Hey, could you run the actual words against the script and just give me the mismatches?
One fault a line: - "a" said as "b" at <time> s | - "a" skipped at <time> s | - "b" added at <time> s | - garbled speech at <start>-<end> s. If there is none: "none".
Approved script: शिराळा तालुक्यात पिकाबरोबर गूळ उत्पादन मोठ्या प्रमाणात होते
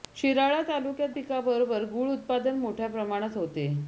none